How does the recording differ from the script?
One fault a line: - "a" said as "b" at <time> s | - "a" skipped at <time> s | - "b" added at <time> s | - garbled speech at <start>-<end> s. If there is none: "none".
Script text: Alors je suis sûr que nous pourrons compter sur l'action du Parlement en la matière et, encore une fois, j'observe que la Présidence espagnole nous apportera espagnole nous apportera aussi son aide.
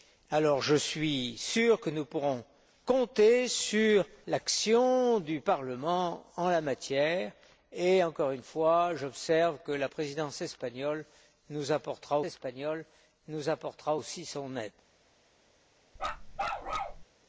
none